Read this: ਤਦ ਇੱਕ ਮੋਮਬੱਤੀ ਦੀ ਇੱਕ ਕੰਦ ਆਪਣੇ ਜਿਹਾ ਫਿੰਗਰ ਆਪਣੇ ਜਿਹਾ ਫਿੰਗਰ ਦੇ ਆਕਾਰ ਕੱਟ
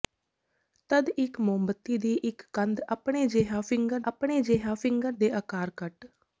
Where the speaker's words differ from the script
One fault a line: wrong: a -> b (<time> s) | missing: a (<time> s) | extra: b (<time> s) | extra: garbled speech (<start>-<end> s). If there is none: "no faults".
no faults